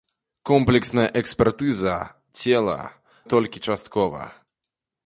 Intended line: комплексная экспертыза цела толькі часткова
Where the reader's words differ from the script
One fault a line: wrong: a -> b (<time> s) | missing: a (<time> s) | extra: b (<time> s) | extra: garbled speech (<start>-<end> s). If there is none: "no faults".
no faults